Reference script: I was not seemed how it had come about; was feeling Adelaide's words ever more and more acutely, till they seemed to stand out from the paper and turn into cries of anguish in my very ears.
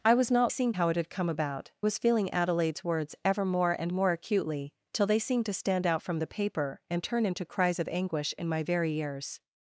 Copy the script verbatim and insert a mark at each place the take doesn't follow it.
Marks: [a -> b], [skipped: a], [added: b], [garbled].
I was not seemed how it had come about; was feeling Adelaide's words ever more and more acutely, till they seemed to stand out from the paper and turn into cries of anguish in my very ears.